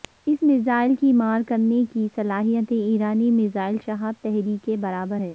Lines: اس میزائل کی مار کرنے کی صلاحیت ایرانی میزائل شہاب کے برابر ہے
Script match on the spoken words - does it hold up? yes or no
no